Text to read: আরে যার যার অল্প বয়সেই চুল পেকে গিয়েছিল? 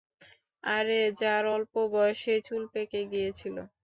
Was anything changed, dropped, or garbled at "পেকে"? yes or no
no